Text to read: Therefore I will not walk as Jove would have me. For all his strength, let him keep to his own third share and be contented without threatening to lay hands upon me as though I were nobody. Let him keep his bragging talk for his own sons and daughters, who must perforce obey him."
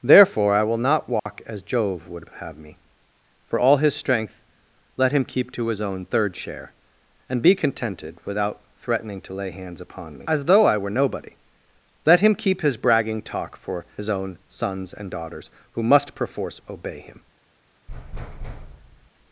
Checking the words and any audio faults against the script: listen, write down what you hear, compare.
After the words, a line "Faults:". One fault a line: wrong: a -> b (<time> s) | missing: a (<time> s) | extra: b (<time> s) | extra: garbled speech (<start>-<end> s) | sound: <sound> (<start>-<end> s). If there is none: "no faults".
Therefore I will not walk as Jove would have me. For all his strength, let him keep to his own third share and be contented without threatening to lay hands upon me as though I were nobody. Let him keep his bragging talk for his own sons and daughters, who must perforce obey him."
Faults:
sound: dropout (1.2-1.3 s)
sound: thud (17.9-19.1 s)